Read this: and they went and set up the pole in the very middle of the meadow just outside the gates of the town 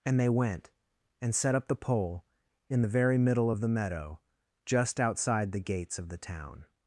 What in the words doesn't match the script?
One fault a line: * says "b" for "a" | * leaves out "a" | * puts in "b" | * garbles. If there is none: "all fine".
all fine